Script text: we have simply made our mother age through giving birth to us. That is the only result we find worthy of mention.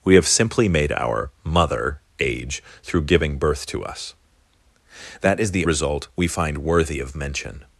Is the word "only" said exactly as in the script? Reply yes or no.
no